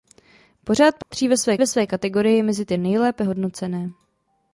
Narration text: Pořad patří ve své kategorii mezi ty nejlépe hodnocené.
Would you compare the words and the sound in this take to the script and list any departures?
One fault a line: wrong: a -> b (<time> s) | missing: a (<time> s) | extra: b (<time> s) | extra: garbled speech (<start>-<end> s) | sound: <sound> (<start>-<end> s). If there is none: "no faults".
sound: dropout (1.0-1.1 s)
extra: ve své (1.6 s)